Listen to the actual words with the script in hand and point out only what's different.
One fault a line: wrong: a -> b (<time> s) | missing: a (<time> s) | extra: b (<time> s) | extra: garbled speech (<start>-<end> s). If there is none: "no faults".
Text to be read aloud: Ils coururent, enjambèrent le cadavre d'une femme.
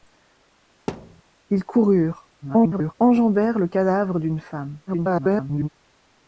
extra: garbled speech (2.4-2.9 s)
extra: garbled speech (4.9-5.7 s)